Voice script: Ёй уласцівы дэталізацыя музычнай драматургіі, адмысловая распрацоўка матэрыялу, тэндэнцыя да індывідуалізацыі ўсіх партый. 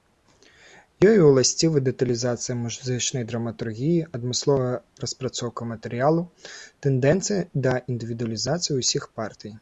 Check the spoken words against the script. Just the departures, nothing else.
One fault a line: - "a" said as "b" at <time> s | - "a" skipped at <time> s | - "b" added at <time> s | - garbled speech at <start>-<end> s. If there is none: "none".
none